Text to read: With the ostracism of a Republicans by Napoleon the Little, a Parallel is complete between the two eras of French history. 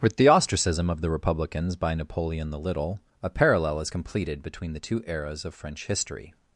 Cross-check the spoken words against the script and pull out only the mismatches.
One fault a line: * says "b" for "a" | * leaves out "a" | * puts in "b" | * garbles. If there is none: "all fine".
* says "the" for "a"
* says "completed" for "complete"